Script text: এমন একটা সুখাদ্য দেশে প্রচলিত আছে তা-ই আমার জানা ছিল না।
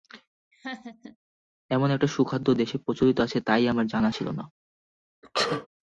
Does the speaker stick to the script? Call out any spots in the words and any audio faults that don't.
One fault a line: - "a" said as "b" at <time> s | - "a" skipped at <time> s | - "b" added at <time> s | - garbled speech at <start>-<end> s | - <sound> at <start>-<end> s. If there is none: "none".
- laugh at 0.5-1.2 s
- sneeze at 5.2-5.7 s